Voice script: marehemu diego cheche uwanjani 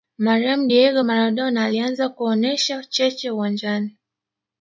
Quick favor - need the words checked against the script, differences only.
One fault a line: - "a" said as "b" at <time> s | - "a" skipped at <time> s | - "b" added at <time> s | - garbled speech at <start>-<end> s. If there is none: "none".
- "maradona alianza kuonesha" added at 1.0 s